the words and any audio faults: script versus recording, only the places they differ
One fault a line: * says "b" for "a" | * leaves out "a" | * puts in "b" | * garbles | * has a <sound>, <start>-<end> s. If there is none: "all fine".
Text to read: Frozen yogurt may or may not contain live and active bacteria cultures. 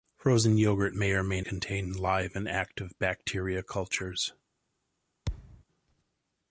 * leaves out "not"
* has a thud, 5.3-5.6 s